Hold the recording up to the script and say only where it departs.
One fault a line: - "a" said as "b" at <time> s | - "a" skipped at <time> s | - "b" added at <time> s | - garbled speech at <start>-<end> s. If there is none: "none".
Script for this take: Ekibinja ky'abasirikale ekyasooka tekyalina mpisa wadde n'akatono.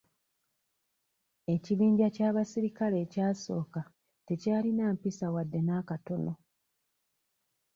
none